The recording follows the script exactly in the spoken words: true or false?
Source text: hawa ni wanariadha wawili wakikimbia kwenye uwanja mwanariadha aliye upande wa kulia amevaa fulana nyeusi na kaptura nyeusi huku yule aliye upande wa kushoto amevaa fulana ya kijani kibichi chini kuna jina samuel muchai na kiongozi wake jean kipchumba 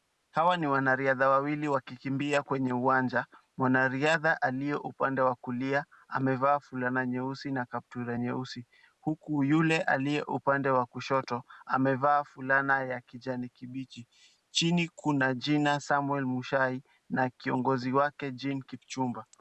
true